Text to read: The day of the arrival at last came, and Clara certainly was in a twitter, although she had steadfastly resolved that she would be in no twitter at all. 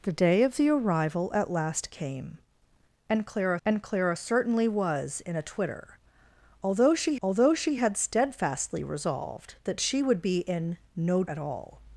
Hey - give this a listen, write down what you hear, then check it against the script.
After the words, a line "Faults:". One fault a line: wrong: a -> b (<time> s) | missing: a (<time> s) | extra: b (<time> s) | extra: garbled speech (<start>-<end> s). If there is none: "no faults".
The day of the arrival at last came, and Clara and Clara certainly was in a twitter, although she although she had steadfastly resolved that she would be in no at all.
Faults:
extra: and Clara (3.6 s)
extra: although she (7.2 s)
missing: twitter (11.2 s)